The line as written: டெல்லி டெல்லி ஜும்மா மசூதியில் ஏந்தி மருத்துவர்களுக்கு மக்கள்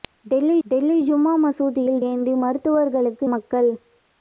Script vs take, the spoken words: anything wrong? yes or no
no